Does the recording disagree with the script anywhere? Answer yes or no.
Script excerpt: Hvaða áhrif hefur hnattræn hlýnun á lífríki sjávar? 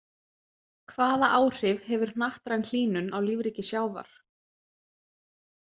no